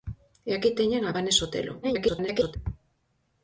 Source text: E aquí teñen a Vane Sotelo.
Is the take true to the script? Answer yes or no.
no